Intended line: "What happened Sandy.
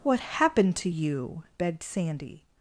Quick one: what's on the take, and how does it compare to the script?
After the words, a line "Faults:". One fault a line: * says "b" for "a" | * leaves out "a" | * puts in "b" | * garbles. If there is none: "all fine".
"What happened to you?" begged Sandy.
Faults:
* puts in "to you begged"